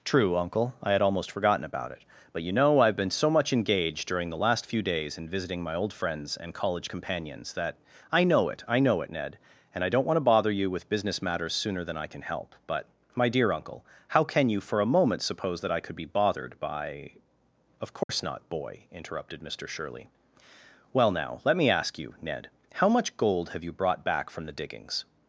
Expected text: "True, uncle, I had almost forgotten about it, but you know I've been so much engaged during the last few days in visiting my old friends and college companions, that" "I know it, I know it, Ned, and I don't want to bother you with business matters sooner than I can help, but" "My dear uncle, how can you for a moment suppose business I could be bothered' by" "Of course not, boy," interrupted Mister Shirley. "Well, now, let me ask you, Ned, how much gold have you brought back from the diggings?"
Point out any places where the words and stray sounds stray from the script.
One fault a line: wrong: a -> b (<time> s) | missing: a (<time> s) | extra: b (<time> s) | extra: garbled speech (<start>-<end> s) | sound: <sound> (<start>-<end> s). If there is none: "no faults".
wrong: business -> that (15.6 s)
sound: dropout (18.0-18.1 s)